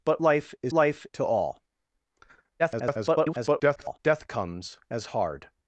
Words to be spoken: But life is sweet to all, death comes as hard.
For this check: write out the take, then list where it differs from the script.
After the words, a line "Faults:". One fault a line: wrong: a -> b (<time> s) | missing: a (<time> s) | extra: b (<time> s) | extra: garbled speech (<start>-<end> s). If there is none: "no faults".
But life is life to all, [garbled] death comes as hard.
Faults:
wrong: sweet -> life (0.7 s)
extra: garbled speech (2.6-4.0 s)